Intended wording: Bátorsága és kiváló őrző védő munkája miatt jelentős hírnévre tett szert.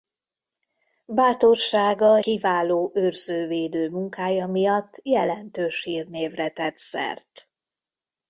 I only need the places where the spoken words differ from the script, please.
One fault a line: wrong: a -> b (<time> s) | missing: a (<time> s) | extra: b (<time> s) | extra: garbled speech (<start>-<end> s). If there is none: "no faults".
missing: és (2.2 s)